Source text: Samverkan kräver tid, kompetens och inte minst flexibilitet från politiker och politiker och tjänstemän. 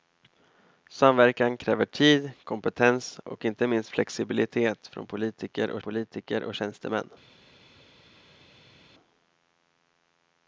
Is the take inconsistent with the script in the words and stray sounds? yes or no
no